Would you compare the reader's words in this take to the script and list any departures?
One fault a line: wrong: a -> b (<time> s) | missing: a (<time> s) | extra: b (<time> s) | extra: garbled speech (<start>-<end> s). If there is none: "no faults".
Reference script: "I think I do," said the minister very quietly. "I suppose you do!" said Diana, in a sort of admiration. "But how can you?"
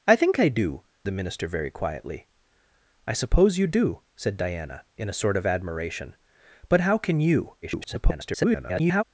missing: said (0.8 s)
extra: garbled speech (7.6-9.0 s)